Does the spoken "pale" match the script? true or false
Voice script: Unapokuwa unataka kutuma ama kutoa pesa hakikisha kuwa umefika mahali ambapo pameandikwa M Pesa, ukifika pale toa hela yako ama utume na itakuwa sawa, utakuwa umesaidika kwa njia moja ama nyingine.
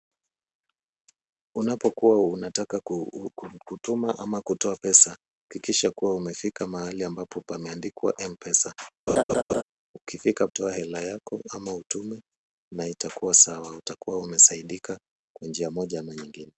false